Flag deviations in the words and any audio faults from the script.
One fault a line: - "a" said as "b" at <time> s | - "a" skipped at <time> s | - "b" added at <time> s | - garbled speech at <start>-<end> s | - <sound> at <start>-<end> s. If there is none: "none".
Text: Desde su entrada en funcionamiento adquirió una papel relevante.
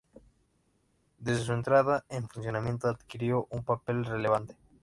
- "una" said as "un" at 3.5 s